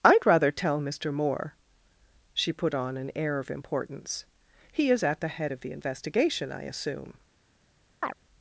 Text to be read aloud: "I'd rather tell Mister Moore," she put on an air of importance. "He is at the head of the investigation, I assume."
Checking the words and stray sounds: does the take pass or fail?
fail